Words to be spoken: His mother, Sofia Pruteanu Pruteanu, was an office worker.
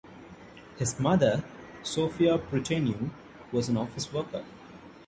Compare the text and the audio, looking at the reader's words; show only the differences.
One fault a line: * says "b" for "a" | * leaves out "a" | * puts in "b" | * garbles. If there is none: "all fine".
* leaves out "Pruteanu"